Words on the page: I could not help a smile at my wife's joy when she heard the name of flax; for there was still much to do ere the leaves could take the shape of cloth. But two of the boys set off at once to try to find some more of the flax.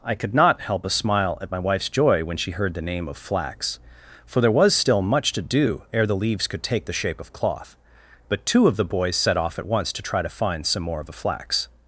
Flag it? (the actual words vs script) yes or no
no